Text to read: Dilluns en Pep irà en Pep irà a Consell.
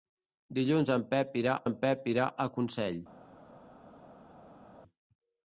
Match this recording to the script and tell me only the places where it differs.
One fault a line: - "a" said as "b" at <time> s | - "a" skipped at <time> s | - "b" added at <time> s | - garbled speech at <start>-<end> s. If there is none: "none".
none